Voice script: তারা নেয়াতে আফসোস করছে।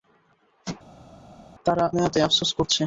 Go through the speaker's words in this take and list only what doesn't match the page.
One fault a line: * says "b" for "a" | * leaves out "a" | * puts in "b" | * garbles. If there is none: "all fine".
all fine